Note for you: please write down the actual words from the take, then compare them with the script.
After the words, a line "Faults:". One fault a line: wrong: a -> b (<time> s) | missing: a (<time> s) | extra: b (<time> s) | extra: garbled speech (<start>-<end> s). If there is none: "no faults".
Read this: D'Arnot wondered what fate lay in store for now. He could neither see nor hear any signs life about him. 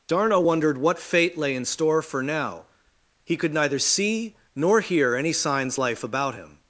D'Arnot wondered what fate lay in store for now. He could neither see nor hear any signs life about him.
Faults:
no faults